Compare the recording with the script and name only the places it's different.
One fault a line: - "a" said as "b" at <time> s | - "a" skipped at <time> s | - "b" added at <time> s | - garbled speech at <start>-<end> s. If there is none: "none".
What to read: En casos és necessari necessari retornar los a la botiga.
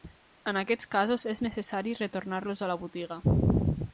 - "aquests" added at 0.6 s
- "necessari" skipped at 1.9 s